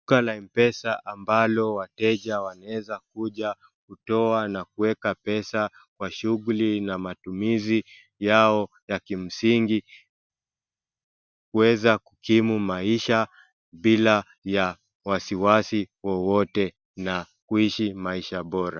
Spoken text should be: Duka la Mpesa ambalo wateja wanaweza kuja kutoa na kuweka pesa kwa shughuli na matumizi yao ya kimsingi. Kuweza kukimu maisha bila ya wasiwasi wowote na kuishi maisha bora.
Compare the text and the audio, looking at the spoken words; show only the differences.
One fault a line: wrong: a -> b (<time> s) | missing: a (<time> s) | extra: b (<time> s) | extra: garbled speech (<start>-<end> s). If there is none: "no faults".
no faults